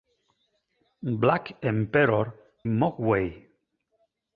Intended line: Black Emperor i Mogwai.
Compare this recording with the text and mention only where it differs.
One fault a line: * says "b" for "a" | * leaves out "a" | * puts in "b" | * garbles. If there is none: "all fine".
* leaves out "i"